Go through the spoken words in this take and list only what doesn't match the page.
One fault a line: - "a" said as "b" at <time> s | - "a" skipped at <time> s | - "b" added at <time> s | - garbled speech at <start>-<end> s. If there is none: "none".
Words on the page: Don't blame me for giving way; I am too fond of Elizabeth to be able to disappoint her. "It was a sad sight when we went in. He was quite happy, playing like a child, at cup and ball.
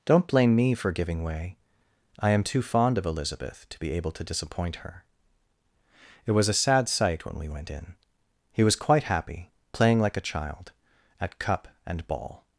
none